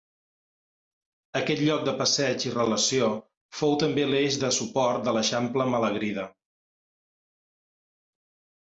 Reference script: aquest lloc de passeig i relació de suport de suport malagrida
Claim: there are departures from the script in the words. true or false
true